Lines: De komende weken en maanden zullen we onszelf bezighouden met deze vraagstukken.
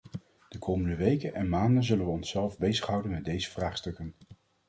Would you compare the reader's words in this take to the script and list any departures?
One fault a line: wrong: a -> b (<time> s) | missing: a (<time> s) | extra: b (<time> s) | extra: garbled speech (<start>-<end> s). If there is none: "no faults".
no faults